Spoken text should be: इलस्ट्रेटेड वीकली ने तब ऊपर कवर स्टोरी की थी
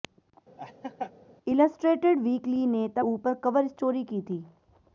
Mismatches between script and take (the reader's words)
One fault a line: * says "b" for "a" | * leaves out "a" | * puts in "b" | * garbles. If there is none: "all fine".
all fine